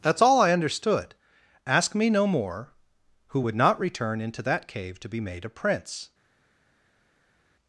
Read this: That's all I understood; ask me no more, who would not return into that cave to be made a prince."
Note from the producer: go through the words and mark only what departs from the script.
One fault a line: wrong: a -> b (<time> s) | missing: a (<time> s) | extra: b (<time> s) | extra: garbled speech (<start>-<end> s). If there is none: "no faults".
no faults